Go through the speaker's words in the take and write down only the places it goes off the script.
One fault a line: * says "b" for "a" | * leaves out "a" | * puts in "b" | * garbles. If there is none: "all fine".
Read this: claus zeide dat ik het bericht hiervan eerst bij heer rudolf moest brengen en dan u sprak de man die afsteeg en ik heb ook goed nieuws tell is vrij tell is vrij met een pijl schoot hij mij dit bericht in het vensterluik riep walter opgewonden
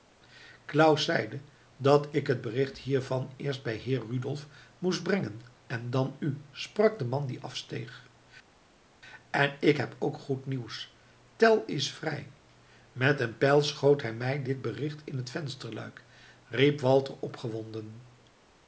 * leaves out "tell is vrij"